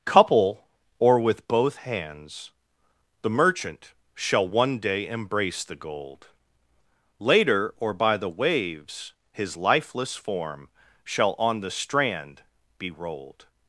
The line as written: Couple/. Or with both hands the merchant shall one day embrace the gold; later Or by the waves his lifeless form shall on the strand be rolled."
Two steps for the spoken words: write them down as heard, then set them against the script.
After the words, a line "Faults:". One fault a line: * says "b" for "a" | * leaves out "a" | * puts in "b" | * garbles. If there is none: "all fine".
Couple/. Or with both hands the merchant shall one day embrace the gold; later Or by the waves his lifeless form shall on the strand be rolled."
Faults:
all fine